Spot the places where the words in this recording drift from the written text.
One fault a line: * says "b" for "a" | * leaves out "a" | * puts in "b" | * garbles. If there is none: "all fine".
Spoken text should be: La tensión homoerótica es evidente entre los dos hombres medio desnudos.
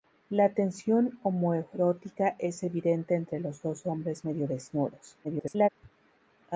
* garbles